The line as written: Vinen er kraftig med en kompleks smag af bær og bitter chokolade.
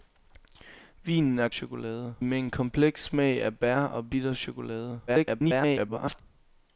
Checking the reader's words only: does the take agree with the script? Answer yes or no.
no